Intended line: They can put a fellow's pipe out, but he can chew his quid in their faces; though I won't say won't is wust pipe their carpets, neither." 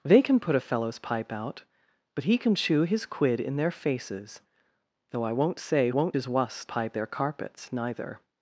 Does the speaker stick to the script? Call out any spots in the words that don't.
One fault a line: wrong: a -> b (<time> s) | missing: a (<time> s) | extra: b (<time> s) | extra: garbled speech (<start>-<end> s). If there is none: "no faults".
no faults